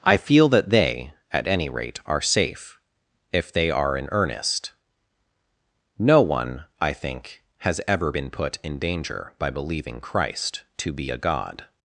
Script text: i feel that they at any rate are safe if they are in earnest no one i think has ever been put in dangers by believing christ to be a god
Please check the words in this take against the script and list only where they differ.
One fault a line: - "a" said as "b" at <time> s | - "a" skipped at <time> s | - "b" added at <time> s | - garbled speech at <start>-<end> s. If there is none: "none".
- "dangers" said as "danger" at 8.8 s